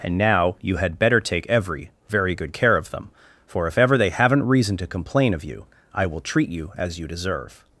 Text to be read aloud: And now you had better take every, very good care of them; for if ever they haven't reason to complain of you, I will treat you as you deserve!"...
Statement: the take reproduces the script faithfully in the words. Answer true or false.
true